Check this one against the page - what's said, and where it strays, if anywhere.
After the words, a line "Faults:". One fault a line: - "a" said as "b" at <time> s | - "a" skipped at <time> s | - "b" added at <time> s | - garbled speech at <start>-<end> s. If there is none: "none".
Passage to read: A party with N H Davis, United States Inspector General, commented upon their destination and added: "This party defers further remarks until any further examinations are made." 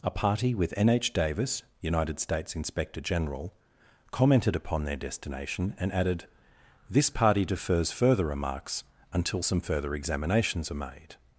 A party with N H Davis, United States Inspector General, commented upon their destination and added: "This party defers further remarks until some further examinations are made."
Faults:
- "any" said as "some" at 9.4 s